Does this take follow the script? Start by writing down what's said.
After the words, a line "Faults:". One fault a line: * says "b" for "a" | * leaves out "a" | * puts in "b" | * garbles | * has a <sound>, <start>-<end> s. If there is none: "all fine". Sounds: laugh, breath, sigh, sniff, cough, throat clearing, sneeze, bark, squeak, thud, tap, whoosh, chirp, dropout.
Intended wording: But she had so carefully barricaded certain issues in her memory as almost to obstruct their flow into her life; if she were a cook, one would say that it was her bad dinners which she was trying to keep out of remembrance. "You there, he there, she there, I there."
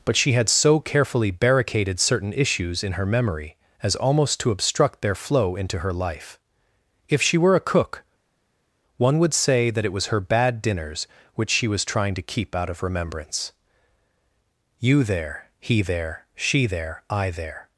But she had so carefully barricaded certain issues in her memory as almost to obstruct their flow into her life; if she were a cook, one would say that it was her bad dinners which she was trying to keep out of remembrance. "You there, he there, she there, I there."
Faults:
all fine